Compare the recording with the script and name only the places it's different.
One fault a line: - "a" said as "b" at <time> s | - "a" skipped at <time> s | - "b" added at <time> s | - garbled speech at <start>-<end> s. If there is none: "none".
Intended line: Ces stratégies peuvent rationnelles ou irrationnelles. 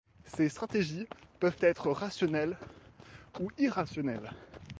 - "être" added at 1.6 s